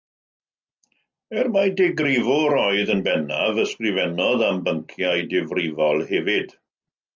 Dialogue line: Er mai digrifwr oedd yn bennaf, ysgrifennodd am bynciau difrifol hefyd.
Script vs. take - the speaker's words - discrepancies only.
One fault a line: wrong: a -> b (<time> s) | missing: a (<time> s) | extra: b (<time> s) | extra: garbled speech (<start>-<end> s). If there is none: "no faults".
no faults